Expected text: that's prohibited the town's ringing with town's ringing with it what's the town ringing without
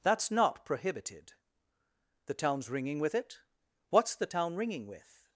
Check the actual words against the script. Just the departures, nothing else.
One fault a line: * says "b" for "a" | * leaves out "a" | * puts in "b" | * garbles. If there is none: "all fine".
* puts in "not"
* leaves out "town's ringing with"
* says "with" for "without"